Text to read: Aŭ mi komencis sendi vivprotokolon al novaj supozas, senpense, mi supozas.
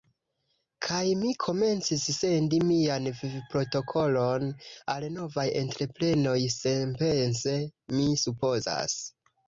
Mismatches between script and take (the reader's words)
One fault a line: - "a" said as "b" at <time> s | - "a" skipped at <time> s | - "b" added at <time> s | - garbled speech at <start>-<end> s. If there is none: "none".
- "Aŭ" said as "Kaj" at 0.8 s
- "mian" added at 2.7 s
- "supozas" said as "entreprenoj" at 5.6 s